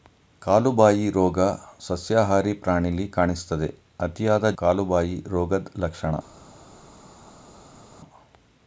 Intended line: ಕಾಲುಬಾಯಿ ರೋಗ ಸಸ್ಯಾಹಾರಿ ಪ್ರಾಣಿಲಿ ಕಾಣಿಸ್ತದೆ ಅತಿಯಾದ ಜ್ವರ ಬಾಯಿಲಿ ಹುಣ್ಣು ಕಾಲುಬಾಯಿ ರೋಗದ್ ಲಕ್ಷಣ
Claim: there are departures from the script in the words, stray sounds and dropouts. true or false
true